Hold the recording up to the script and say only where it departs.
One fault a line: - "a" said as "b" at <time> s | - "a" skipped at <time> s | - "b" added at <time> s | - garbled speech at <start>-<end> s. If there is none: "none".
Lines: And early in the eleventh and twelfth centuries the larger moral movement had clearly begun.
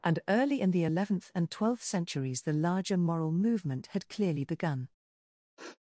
none